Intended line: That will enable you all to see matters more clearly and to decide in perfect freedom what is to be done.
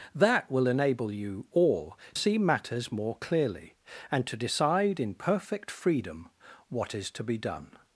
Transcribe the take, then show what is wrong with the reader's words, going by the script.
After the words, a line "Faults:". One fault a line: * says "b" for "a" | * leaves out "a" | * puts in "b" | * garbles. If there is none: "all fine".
That will enable you all see matters more clearly and to decide in perfect freedom what is to be done.
Faults:
* leaves out "to"